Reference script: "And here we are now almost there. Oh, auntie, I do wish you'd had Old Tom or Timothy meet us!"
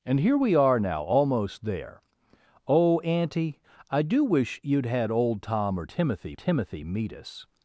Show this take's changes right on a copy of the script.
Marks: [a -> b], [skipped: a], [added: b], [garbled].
"And here we are now almost there. Oh, auntie, I do wish you'd had Old Tom or Timothy [added: Timothy] meet us!"